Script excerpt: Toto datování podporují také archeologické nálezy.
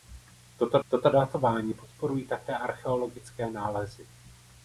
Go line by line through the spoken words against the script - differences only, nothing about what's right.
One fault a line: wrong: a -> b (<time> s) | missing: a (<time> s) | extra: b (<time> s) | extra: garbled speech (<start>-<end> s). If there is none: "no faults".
extra: toto (0.9 s)